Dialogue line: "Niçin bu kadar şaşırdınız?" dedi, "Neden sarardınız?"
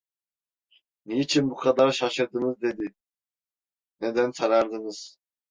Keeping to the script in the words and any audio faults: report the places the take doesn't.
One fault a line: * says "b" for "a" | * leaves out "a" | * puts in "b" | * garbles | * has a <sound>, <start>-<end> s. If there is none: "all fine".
all fine